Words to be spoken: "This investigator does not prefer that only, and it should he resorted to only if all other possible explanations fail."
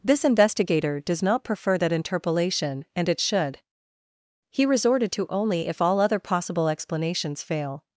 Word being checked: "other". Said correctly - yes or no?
yes